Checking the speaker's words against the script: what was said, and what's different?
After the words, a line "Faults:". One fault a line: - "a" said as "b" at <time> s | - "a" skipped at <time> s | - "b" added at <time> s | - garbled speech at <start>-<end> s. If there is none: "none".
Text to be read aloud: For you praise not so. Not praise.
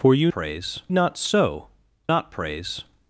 For you praise not so. Not praise.
Faults:
none